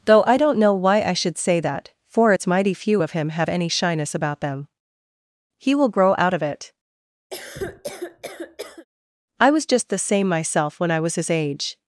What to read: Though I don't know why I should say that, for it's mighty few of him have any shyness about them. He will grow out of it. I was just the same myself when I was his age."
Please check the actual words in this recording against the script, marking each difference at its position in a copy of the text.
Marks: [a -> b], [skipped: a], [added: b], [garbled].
Though I don't know why I should say that, for it's mighty few of him have any shyness about them. He will grow out of it. I was just the same myself when I was his age."